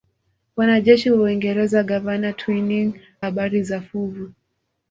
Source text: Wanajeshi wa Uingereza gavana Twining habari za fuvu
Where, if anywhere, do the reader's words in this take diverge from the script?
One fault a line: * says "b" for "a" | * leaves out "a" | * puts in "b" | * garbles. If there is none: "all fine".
all fine